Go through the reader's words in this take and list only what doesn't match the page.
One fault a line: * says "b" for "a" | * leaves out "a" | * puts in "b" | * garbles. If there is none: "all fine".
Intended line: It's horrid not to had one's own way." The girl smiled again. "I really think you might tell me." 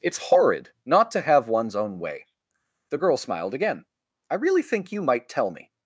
* says "have" for "had"